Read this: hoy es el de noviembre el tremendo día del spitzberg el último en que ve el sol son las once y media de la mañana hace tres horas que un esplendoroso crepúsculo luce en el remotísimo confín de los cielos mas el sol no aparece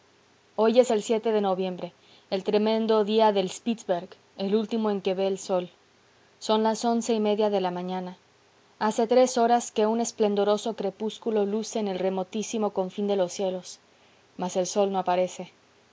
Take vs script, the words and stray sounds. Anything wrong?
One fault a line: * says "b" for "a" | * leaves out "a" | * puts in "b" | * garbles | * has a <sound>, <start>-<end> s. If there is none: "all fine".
all fine